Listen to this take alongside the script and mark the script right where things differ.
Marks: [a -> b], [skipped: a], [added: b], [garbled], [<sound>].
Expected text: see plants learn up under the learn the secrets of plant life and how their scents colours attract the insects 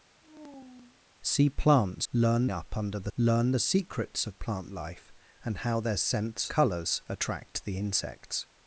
[sigh] see plants learn up under the learn the secrets of plant life and how their scents colours attract the insects